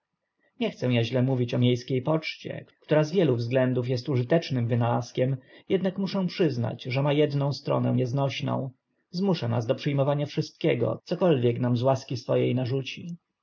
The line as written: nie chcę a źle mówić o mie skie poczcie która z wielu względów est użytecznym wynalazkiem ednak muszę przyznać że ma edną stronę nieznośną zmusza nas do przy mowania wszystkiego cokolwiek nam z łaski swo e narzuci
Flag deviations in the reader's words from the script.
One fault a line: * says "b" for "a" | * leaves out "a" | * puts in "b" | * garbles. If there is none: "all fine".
all fine